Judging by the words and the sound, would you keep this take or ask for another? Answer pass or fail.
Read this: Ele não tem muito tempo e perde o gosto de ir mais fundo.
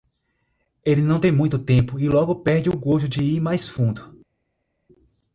fail